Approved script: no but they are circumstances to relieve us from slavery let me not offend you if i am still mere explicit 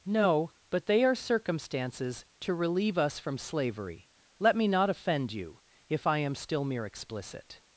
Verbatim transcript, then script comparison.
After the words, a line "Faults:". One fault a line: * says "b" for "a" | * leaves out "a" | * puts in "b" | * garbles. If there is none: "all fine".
no but they are circumstances to relieve us from slavery let me not offend you if i am still mere explicit
Faults:
all fine